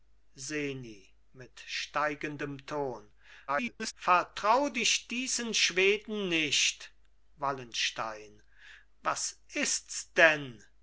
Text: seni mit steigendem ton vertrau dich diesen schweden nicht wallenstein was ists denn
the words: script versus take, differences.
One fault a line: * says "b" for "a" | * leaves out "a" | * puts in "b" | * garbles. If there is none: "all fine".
* garbles